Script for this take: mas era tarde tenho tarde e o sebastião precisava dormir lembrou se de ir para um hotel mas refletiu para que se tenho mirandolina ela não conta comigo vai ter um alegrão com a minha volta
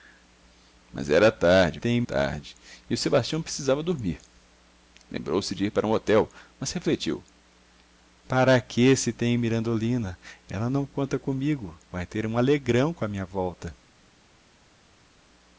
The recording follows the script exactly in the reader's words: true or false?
true